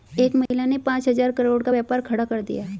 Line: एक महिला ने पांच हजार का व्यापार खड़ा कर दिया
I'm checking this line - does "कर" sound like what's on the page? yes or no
yes